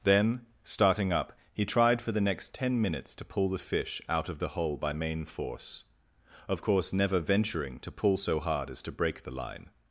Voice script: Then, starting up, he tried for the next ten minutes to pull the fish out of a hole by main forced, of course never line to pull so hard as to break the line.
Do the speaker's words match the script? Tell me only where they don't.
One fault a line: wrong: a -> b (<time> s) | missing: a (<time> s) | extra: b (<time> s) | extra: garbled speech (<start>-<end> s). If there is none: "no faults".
wrong: a -> the (4.4 s)
wrong: forced -> force (5.2 s)
wrong: line -> venturing (7.2 s)